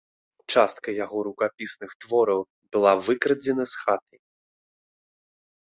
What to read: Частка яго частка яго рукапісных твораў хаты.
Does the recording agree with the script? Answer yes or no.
no